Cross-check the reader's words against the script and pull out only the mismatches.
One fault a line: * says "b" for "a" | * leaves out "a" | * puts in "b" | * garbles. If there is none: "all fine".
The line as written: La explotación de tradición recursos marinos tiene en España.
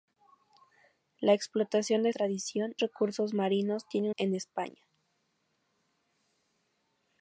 all fine